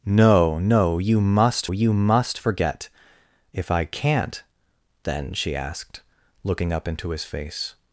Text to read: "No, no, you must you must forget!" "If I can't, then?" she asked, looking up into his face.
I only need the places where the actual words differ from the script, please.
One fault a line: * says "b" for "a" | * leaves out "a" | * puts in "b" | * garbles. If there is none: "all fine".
all fine